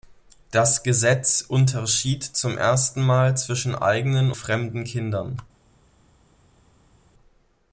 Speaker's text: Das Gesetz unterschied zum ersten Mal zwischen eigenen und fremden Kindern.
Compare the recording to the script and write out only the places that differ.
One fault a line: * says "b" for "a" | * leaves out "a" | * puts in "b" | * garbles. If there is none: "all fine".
* leaves out "und"